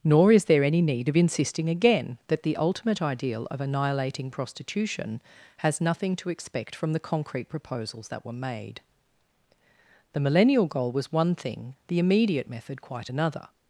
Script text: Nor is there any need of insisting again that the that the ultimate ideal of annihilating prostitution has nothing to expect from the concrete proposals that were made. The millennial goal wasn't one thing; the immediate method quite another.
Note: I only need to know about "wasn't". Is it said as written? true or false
false